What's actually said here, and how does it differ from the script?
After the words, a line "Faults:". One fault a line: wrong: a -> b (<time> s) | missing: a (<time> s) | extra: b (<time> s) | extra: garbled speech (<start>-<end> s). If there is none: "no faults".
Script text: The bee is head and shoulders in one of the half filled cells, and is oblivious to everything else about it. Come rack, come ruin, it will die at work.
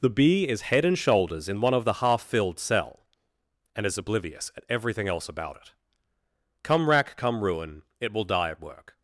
The bee is head and shoulders in one of the half filled cell, and is oblivious at everything else about it. Come rack, come ruin, it will die at work.
Faults:
wrong: cells -> cell (2.6 s)
wrong: to -> at (4.6 s)